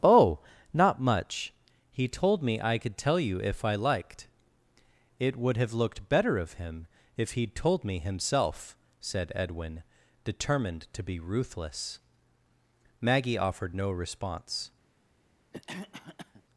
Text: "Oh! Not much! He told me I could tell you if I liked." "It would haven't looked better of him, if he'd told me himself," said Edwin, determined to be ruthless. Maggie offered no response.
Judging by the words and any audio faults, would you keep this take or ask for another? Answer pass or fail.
fail